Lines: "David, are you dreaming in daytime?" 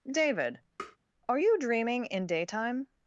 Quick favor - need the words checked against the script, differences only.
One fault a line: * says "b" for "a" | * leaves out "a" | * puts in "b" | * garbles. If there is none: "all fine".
all fine